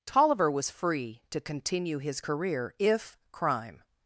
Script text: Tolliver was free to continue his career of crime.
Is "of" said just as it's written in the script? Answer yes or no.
no